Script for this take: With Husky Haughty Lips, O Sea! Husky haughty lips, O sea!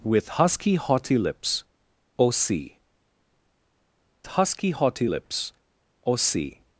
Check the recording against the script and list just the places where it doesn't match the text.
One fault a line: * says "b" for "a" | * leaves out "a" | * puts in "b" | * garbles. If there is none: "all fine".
all fine